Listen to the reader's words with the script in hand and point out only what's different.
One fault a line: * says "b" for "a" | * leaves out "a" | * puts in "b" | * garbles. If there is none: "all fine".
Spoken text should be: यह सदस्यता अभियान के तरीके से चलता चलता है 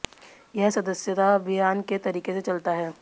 * leaves out "चलता"